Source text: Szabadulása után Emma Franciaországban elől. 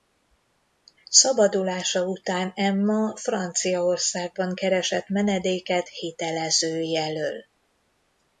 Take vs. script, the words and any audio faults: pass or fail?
fail